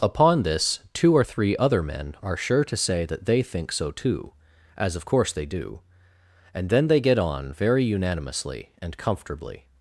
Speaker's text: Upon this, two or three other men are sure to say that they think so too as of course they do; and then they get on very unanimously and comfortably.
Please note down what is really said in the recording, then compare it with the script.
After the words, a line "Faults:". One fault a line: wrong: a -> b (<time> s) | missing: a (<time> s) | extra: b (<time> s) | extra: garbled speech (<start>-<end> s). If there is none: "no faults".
Upon this, two or three other men are sure to say that they think so too as of course they do; and then they get on very unanimously and comfortably.
Faults:
no faults